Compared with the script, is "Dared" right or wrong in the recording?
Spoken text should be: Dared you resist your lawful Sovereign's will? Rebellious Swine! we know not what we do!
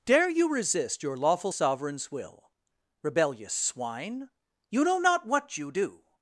wrong